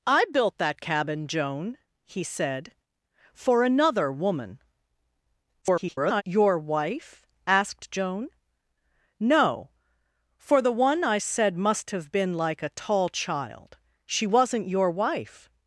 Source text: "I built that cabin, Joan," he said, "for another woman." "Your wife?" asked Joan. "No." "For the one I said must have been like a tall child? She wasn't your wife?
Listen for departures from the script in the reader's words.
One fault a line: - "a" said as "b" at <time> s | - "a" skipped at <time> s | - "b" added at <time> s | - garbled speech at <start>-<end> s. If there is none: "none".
- garbled speech at 5.6-6.2 s